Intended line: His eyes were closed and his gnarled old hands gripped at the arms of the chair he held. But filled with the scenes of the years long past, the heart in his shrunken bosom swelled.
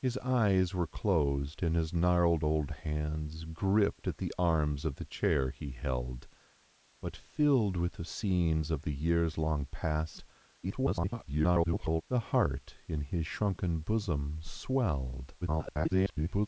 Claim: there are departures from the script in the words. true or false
true